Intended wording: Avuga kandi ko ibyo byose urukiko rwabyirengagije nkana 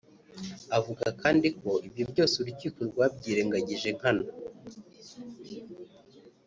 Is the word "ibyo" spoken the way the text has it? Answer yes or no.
yes